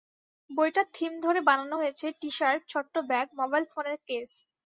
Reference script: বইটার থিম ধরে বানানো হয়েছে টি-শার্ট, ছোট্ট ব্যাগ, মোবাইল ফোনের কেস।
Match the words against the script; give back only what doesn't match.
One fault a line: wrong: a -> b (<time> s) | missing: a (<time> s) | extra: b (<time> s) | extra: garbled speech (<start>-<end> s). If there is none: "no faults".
no faults